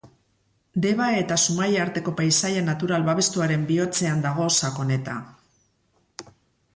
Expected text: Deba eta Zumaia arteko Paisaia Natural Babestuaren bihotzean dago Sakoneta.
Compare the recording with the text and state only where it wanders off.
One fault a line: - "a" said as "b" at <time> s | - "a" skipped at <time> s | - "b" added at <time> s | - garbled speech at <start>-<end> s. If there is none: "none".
none